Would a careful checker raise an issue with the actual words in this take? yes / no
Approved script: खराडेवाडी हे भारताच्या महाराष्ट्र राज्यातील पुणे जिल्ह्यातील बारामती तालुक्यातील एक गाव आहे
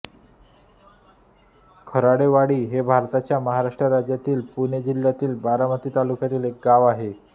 no